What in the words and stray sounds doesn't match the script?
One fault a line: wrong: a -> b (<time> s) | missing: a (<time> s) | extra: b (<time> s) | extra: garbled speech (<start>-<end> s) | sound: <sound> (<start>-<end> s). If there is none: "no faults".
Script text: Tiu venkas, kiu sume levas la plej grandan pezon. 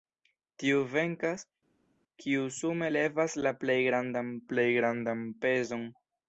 extra: plej grandan (4.5 s)